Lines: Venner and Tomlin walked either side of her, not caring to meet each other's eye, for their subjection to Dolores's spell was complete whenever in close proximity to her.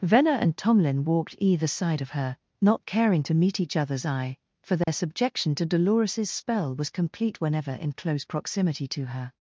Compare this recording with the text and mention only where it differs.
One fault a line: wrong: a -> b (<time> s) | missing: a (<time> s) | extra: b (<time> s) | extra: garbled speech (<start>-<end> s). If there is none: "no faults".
no faults